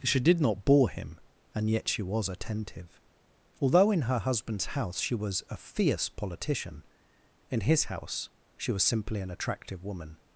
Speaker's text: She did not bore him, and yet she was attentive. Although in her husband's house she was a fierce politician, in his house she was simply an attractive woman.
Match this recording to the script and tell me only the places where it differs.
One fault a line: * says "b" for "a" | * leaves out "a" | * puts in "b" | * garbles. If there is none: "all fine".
all fine